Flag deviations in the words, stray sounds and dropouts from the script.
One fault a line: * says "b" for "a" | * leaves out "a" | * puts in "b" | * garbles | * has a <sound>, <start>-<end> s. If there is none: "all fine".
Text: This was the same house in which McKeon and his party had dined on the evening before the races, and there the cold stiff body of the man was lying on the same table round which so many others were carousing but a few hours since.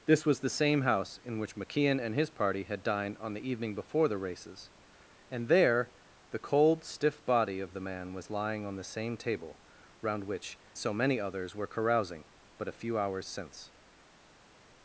all fine